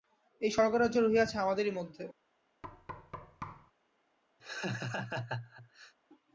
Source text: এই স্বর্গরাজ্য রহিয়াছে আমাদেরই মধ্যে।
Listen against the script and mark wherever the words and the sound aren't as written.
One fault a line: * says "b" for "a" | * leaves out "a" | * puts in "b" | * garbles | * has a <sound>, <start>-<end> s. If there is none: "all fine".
* has a thud, 2.6-3.7 s
* has a laugh, 4.4-5.9 s